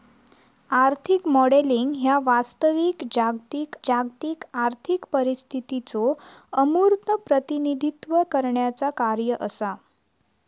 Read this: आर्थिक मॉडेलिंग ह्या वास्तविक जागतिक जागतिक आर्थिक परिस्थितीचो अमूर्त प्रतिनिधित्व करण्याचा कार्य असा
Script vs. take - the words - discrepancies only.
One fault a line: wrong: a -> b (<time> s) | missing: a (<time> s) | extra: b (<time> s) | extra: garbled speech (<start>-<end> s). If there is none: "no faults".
no faults